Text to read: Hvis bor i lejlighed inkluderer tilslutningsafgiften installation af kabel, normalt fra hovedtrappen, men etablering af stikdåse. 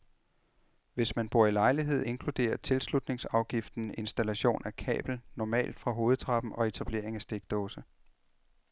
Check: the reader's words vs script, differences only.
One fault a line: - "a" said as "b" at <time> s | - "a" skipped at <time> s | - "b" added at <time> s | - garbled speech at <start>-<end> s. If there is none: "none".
- "man" added at 1.1 s
- "men" said as "og" at 6.5 s